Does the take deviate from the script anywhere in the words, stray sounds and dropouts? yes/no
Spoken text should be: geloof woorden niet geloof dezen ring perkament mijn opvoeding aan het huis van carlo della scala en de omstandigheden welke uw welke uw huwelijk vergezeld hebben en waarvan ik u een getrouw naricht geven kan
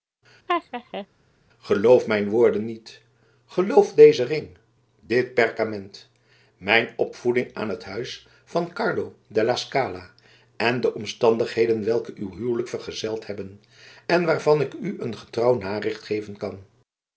yes